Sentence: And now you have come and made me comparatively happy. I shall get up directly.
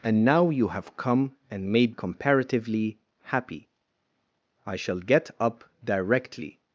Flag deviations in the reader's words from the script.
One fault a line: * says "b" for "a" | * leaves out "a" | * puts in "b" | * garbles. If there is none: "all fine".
* leaves out "me"